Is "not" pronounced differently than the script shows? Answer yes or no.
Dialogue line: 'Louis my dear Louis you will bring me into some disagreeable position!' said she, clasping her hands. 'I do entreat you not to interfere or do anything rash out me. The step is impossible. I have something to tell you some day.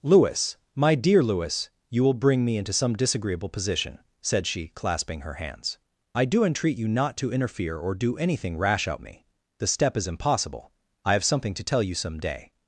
no